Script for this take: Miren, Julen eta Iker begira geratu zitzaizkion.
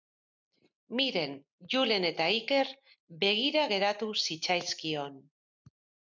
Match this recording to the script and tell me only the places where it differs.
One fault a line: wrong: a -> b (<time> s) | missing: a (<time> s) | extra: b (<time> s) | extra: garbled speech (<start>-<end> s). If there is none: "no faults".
no faults